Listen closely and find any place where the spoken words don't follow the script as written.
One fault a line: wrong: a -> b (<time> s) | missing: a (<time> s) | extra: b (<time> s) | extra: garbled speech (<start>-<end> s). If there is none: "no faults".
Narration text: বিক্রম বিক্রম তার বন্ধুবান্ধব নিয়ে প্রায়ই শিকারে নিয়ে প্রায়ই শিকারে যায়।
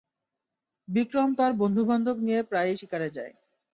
missing: বিক্রম (1.3 s)
missing: নিয়ে প্রায়ই শিকারে (3.1 s)